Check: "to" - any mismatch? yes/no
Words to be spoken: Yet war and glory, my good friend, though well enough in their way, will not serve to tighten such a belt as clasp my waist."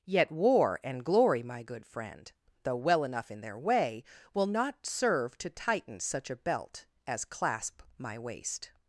no